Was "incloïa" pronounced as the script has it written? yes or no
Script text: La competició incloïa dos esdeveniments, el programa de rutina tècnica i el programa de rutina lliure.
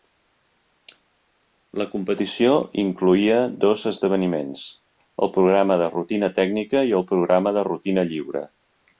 yes